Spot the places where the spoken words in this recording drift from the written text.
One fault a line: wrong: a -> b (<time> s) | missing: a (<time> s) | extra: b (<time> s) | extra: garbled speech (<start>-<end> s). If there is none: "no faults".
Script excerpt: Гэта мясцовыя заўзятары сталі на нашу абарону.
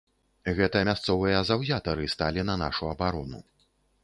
no faults